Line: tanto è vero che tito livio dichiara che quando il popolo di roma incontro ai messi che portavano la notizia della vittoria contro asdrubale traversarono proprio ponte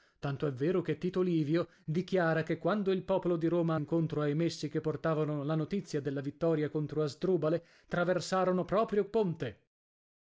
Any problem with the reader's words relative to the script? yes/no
no